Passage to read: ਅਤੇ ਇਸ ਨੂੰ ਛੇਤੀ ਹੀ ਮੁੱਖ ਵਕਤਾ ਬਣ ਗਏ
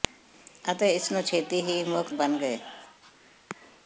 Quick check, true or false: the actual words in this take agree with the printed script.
false